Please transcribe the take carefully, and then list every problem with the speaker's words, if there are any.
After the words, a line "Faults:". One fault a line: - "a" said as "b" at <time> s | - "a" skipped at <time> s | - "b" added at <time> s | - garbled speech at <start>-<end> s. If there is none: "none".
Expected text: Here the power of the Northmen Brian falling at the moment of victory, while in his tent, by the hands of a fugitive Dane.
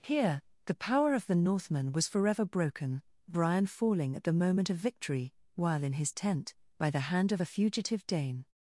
Here the power of the Northmen was forever broken, Brian falling at the moment of victory, while in his tent, by the hand of a fugitive Dane.
Faults:
- "was forever broken" added at 1.9 s
- "hands" said as "hand" at 7.1 s